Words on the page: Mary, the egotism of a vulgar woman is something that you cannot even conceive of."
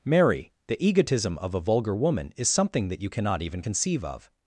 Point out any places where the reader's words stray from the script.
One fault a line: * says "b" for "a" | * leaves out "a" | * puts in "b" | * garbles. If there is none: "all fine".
all fine